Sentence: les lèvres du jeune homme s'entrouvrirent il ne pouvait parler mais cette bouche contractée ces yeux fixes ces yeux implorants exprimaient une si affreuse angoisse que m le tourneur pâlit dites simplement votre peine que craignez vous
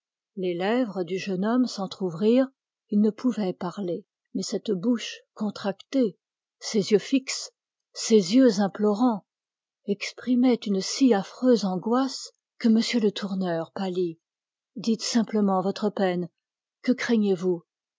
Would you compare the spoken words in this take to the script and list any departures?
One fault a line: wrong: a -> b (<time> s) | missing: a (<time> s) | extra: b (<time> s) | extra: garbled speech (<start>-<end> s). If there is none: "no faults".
no faults